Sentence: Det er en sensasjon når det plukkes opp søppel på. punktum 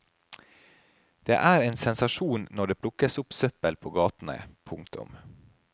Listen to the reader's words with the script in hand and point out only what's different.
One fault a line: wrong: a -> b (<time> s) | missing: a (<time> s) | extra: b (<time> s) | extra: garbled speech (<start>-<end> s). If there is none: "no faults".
extra: gatene (4.0 s)